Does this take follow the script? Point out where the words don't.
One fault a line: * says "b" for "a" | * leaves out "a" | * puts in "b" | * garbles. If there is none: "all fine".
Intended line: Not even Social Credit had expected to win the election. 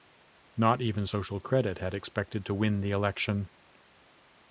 all fine